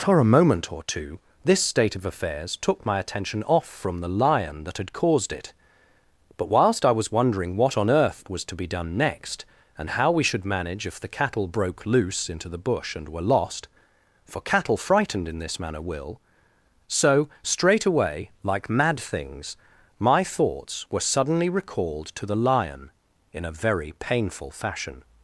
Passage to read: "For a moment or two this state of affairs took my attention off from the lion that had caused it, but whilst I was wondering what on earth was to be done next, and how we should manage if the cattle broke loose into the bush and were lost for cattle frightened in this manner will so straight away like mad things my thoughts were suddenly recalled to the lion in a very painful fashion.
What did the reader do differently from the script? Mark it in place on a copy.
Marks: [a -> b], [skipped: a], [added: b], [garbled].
"For a moment or two this state of affairs took my attention off from the lion that had caused it, but whilst I was wondering what on earth was to be done next, and how we should manage if the cattle broke loose into the bush and were lost for cattle frightened in this manner will so straight away like mad things my thoughts were suddenly recalled to the lion in a very painful fashion.